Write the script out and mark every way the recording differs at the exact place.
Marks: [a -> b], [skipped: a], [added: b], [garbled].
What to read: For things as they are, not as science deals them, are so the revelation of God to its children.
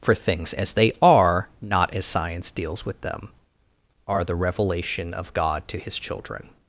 For things as they are, not as science deals [added: with] them, are [skipped: so] the revelation of God to [its -> his] children.